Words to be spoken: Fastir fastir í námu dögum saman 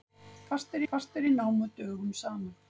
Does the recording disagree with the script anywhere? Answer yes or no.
no